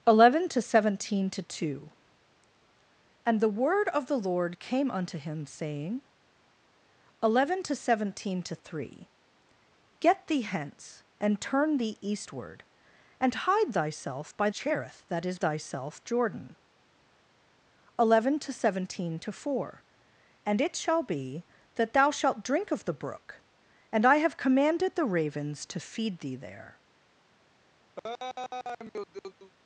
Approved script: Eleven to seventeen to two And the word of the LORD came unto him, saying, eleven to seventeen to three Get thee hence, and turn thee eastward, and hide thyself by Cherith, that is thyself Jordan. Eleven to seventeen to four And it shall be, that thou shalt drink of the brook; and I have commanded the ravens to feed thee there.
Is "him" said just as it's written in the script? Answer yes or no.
yes